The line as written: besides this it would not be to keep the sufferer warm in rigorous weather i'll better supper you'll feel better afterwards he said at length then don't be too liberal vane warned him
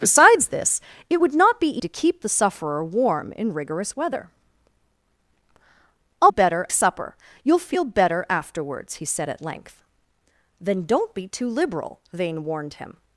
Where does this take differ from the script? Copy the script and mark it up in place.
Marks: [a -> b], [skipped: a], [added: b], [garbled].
besides this it would not be to keep the sufferer warm in rigorous weather i'll better supper you'll feel better afterwards he said at length then don't be too liberal vane warned him